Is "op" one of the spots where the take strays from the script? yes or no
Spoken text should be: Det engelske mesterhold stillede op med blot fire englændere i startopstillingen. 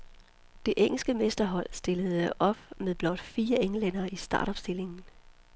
no